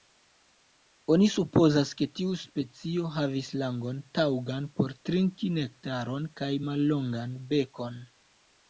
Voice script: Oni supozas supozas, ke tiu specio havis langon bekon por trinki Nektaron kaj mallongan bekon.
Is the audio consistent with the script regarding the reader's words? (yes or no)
no